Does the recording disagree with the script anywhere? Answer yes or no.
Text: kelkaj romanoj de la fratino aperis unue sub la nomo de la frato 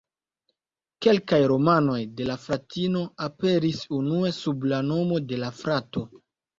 no